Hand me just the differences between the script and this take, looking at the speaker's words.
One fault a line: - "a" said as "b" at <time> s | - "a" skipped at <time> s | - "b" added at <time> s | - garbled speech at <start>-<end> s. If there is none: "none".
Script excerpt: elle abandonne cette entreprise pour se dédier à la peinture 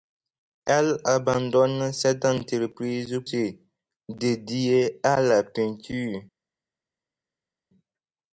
- "pour" skipped at 3.2 s